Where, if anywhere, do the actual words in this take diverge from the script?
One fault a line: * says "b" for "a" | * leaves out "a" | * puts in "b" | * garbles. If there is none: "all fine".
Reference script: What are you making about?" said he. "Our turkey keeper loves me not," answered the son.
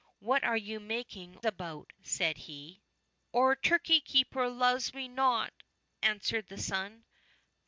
all fine